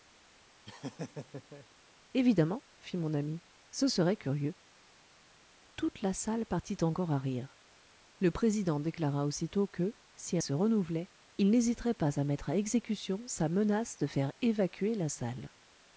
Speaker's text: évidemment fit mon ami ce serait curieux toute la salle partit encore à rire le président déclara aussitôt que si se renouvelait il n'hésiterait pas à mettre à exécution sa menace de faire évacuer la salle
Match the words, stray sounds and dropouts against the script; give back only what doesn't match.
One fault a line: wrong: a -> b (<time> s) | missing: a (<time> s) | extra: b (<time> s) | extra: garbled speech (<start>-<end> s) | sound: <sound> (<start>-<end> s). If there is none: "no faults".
sound: laugh (0.6-1.7 s)